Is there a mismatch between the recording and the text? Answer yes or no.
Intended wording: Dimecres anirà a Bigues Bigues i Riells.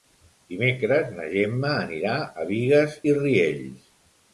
yes